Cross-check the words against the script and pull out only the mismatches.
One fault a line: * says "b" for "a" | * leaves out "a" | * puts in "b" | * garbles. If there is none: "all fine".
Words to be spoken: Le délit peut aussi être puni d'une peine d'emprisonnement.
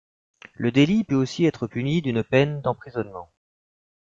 all fine